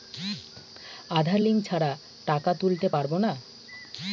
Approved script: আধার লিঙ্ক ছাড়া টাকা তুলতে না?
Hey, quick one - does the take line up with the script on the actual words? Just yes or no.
no